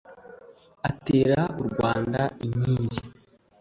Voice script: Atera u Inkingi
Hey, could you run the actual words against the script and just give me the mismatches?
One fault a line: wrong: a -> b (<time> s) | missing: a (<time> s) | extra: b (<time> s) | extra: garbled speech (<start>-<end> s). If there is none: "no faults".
extra: Rwanda (1.7 s)